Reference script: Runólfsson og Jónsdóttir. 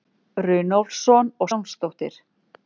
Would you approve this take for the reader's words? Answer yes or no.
yes